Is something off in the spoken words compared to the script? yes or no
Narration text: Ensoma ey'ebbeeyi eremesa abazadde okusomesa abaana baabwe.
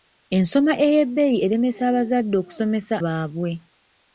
yes